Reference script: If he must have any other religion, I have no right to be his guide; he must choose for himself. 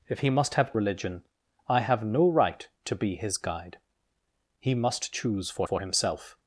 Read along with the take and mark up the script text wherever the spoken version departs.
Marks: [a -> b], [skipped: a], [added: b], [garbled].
If he must have [skipped: any other] religion, I have no right to be his guide; he must choose for [added: for] himself.